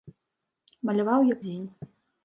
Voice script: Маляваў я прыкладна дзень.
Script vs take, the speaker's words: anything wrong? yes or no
yes